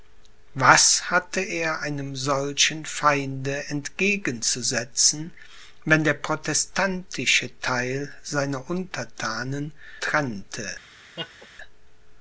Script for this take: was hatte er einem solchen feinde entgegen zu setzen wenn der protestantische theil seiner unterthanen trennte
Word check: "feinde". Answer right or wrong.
right